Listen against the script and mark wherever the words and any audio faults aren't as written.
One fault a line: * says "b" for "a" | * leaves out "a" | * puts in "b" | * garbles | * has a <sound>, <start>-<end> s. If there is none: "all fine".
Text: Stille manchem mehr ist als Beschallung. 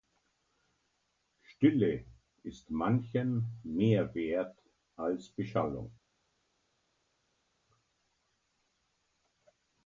* puts in "ist"
* says "wert" for "ist"